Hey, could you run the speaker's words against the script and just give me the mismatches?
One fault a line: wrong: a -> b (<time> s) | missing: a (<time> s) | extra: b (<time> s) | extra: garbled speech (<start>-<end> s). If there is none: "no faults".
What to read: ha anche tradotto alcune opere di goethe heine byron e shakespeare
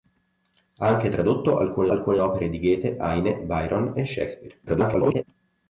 extra: alcune (1.9 s)
extra: garbled speech (4.7-5.2 s)